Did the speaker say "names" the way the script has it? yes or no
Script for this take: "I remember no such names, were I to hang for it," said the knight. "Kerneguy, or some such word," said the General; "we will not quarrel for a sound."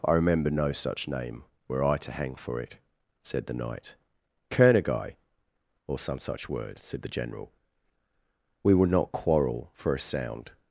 no